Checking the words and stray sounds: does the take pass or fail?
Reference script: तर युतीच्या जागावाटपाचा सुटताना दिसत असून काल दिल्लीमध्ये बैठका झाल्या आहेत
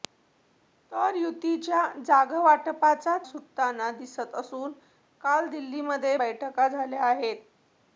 pass